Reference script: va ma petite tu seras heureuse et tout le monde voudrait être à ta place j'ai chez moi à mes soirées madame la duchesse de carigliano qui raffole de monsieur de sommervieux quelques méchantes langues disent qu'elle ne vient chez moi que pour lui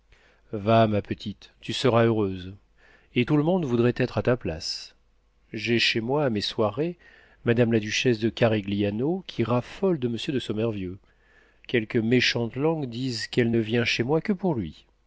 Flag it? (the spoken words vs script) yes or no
no